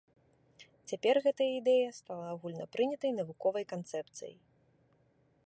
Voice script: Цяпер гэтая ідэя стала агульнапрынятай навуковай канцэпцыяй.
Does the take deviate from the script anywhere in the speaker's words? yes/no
no